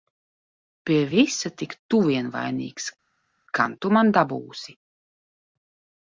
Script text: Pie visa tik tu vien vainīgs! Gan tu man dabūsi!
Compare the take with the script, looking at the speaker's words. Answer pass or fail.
pass